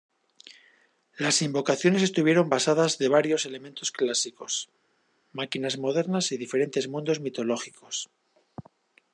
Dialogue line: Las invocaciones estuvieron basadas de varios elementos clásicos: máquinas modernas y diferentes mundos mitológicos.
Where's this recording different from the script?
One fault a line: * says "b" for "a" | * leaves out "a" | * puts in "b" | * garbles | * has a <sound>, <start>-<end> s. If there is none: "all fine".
all fine